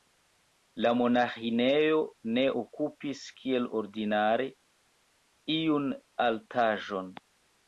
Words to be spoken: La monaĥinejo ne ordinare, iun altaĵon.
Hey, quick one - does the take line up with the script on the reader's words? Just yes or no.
no